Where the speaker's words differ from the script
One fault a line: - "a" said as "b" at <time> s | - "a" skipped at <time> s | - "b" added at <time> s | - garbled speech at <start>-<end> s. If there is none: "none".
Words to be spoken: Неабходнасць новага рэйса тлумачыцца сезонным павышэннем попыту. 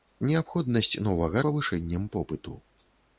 - "рэйса тлумачыцца сезонным" skipped at 1.4 s